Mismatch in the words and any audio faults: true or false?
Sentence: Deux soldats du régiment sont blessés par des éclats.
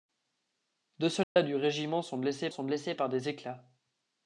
true